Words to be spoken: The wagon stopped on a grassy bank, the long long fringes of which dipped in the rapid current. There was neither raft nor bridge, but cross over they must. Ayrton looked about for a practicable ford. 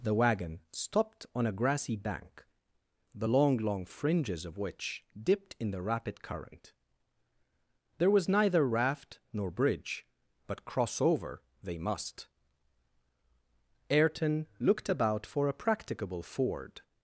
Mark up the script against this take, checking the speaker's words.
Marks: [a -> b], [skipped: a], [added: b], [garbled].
The wagon stopped on a grassy bank, the long long fringes of which dipped in the rapid current. There was neither raft nor bridge, but cross over they must. Ayrton looked about for a practicable ford.